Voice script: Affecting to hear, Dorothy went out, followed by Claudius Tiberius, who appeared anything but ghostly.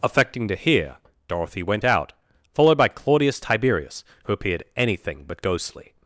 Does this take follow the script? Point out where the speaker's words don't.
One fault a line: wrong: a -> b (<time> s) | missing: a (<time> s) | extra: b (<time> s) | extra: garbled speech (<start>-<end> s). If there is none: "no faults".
no faults